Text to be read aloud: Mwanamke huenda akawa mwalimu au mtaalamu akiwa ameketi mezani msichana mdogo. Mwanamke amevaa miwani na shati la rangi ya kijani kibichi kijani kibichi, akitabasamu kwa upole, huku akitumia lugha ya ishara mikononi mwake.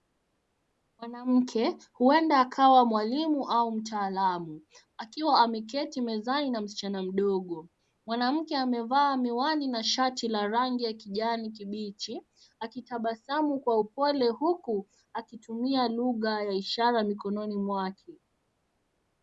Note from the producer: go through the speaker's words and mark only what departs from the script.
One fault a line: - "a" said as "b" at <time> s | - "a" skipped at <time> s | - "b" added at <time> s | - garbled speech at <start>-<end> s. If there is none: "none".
- "na" added at 6.5 s
- "kijani kibichi" skipped at 12.2 s